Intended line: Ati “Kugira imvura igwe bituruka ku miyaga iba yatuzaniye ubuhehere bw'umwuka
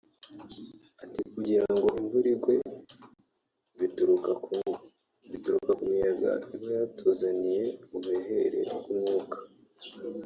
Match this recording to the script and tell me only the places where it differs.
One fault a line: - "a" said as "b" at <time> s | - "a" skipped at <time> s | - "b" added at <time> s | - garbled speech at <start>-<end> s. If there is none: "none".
- "ngo" added at 1.8 s